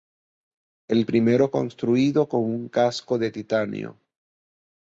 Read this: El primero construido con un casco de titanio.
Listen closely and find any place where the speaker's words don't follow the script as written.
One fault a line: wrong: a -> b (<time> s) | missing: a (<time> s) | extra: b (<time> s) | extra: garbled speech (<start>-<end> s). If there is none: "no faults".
no faults